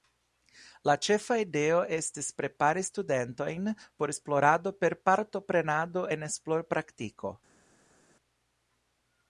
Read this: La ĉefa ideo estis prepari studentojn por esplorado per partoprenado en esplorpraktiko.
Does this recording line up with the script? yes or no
yes